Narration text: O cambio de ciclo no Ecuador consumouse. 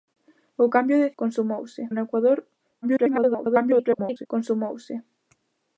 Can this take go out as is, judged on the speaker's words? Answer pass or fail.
fail